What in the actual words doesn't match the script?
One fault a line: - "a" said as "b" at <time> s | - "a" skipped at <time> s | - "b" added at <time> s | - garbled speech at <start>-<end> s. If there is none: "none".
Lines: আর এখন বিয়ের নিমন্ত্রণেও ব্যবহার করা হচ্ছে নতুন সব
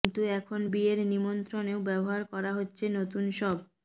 - "আর" said as "কিন্তু" at 0.0 s